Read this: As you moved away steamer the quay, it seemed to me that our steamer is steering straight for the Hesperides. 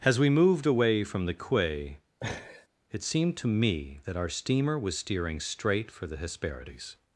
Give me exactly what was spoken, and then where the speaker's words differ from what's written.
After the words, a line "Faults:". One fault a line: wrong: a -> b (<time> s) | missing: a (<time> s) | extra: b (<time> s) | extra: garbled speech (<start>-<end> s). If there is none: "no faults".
As we moved away from the quay, it seemed to me that our steamer was steering straight for the Hesperides.
Faults:
wrong: you -> we (0.2 s)
wrong: steamer -> from (1.0 s)
wrong: is -> was (4.8 s)